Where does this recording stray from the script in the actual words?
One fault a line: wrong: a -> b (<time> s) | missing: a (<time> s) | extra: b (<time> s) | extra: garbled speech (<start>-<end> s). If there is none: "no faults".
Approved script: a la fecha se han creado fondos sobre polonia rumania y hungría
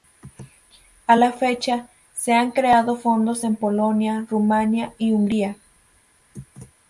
wrong: sobre -> en (3.4 s)